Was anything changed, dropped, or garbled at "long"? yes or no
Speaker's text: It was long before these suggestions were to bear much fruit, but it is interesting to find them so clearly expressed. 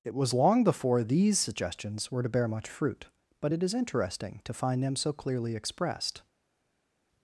no